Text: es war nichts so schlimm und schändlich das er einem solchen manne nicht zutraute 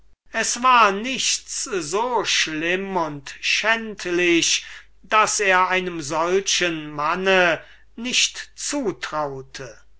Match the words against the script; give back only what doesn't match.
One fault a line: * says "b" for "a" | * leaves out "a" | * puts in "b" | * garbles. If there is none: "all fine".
all fine